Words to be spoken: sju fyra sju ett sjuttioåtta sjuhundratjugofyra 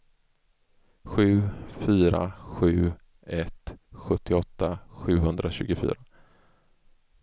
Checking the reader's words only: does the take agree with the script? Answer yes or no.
yes